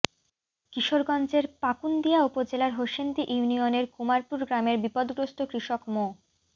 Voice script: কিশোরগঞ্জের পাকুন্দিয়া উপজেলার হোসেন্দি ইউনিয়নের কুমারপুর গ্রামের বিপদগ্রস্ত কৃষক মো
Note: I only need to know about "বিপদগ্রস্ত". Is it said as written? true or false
true